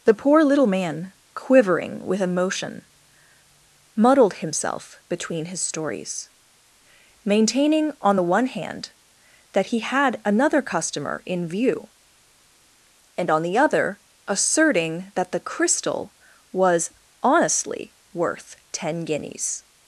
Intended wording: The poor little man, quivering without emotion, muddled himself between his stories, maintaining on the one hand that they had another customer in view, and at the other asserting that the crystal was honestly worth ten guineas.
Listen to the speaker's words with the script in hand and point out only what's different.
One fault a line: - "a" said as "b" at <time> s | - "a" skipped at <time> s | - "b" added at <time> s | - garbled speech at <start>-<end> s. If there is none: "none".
- "without" said as "with" at 2.1 s
- "they" said as "he" at 9.7 s
- "at" said as "on" at 13.3 s